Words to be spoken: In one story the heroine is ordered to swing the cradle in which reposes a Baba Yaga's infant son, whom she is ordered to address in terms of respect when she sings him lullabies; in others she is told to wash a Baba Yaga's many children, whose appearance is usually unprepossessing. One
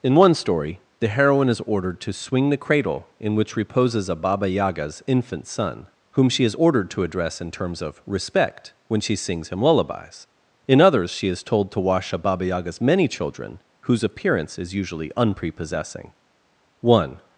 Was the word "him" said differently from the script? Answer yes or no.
no